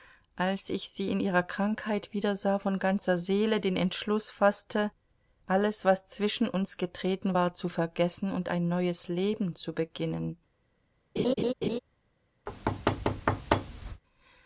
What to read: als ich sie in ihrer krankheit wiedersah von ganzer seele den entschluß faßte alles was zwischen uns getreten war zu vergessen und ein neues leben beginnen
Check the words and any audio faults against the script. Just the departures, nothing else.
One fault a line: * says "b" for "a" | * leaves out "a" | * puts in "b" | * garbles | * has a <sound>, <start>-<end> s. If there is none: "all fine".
* puts in "zu"
* has a laugh, 11.2-11.8 s
* has a thud, 12.5-14.0 s